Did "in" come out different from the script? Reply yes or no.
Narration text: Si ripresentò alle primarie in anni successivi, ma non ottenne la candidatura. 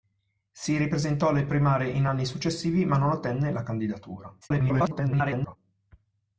no